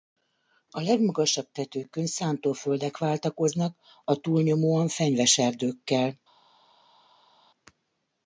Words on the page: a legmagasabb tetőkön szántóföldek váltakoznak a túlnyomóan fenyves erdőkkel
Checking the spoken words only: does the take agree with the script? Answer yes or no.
yes